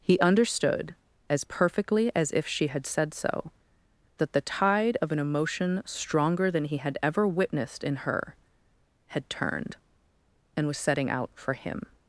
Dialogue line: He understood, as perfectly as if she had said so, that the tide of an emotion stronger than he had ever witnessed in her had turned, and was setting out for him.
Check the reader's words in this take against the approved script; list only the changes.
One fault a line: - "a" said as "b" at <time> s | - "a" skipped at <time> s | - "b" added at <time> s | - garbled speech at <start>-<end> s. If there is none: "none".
none